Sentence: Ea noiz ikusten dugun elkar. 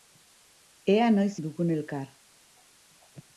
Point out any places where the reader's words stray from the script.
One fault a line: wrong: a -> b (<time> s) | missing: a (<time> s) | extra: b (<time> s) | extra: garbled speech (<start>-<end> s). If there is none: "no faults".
missing: ikusten (1.4 s)